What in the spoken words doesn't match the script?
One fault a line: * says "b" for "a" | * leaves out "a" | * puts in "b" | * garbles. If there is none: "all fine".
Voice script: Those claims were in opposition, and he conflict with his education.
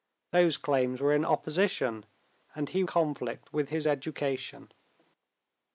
all fine